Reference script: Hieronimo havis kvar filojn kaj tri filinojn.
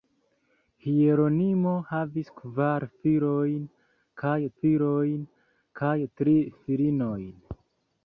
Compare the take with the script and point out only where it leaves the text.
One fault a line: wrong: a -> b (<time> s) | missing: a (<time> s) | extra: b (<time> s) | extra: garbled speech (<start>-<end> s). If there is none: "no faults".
extra: filojn kaj (4.6 s)